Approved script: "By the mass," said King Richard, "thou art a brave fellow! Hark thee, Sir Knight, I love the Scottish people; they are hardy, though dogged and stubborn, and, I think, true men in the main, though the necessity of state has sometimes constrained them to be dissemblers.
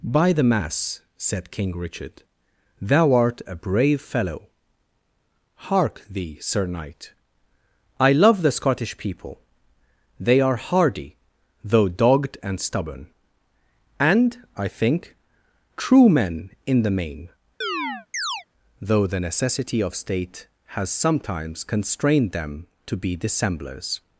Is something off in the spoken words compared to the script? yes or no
no